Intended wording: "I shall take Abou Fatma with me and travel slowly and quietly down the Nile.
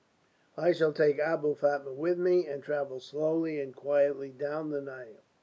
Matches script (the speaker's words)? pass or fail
pass